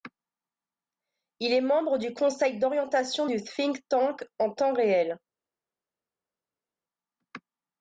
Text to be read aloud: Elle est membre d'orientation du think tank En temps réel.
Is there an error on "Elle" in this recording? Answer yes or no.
yes